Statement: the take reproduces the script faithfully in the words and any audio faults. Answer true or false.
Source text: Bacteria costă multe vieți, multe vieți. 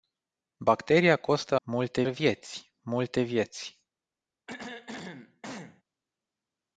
false